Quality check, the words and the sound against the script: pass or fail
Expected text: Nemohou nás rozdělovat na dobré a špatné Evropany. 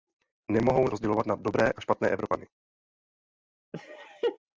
fail